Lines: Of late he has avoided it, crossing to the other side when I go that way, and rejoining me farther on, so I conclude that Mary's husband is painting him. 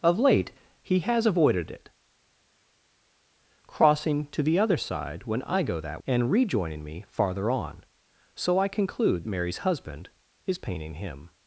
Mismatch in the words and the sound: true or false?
true